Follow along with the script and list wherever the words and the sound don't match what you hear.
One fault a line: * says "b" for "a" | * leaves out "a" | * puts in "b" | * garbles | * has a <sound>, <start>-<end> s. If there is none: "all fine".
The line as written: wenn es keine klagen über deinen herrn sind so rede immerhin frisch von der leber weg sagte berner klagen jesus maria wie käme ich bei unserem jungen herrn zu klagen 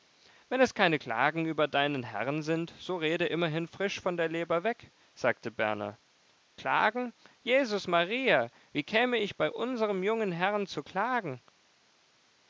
all fine